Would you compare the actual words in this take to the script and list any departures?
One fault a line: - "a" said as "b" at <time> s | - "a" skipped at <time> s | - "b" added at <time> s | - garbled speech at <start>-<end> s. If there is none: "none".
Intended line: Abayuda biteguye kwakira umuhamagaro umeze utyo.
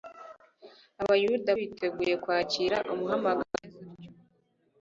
none